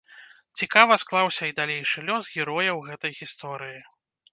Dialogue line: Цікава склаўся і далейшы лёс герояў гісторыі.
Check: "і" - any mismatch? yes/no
no